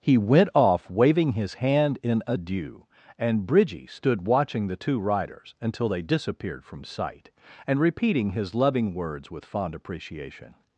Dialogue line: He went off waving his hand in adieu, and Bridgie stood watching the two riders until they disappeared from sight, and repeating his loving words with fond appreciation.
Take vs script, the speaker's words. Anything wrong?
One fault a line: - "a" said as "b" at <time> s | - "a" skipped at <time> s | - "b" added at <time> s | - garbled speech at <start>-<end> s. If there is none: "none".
none